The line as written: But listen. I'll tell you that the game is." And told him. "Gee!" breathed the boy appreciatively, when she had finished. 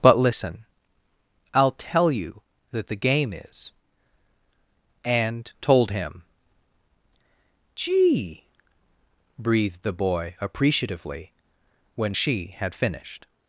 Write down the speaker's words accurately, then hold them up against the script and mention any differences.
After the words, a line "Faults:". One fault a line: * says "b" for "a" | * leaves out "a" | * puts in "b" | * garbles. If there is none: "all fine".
But listen. I'll tell you that the game is." And told him. "Gee!" breathed the boy appreciatively, when she had finished.
Faults:
all fine